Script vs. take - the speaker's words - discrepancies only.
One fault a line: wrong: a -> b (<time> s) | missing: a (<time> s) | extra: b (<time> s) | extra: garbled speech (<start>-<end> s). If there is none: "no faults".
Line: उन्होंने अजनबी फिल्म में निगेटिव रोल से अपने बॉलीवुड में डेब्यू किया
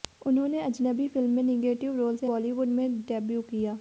missing: अपने (2.3 s)